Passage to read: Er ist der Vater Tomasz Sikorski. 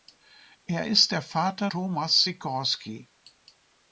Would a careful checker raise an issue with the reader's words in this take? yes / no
no